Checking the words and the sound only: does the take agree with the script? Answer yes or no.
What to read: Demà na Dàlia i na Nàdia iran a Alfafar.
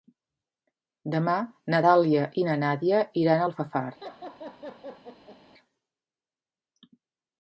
no